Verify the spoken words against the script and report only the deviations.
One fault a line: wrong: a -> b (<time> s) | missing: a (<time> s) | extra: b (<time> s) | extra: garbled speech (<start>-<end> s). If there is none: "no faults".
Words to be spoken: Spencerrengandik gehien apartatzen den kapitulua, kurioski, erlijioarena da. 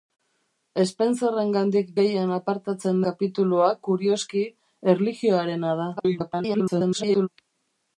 missing: den (3.0 s)
extra: garbled speech (6.0-7.3 s)